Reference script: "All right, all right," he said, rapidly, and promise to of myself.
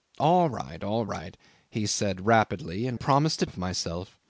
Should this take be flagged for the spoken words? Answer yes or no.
no